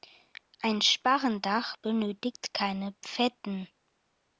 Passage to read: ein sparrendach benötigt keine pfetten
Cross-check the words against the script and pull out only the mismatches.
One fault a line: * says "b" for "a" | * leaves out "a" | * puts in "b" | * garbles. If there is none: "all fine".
all fine